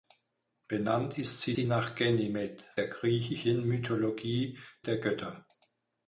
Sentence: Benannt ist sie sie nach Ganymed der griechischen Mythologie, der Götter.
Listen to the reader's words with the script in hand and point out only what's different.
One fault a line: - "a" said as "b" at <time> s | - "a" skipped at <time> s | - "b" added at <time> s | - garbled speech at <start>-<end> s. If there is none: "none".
none